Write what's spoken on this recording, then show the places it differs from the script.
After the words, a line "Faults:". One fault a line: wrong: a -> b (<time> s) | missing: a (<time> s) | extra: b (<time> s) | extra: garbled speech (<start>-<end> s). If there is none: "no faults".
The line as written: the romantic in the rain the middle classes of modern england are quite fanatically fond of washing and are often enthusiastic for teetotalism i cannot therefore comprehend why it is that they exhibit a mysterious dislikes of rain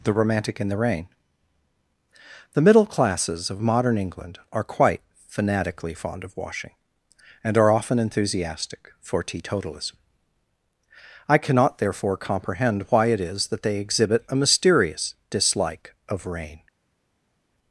the romantic in the rain the middle classes of modern england are quite fanatically fond of washing and are often enthusiastic for teetotalism i cannot therefore comprehend why it is that they exhibit a mysterious dislike of rain
Faults:
wrong: dislikes -> dislike (15.3 s)